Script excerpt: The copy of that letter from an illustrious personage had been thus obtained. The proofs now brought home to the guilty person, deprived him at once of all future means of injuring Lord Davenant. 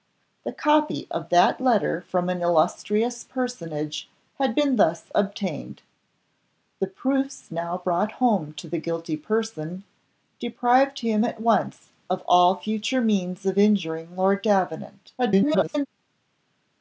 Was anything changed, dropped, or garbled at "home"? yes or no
no